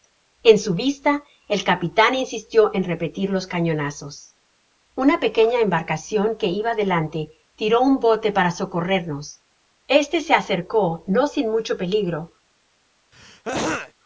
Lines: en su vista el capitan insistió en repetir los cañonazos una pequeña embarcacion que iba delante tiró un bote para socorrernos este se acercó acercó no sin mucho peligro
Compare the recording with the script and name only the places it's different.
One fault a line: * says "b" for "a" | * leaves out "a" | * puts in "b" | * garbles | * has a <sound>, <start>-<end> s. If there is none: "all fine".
* leaves out "acercó"
* has a throat clearing, 13.1-13.9 s